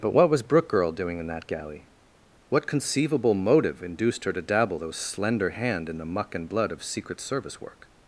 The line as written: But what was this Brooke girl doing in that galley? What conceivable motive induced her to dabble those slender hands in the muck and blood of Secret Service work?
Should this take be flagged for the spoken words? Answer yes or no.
yes